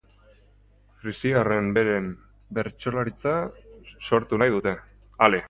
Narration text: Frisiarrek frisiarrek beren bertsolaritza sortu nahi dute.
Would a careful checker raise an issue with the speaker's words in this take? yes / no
yes